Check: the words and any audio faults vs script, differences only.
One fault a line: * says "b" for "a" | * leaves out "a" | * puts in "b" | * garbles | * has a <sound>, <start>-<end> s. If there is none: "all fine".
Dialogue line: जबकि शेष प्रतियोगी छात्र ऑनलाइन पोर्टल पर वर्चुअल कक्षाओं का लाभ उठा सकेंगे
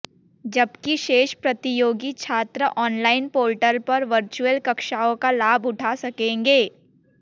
all fine